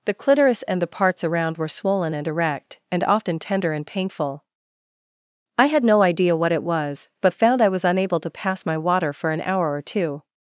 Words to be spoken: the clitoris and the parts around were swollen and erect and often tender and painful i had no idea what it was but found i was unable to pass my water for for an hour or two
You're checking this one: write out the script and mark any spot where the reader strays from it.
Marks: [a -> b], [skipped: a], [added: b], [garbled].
the clitoris and the parts around were swollen and erect and often tender and painful i had no idea what it was but found i was unable to pass my water for [skipped: for] an hour or two